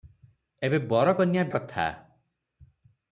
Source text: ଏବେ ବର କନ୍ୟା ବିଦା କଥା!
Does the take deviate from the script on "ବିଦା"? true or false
true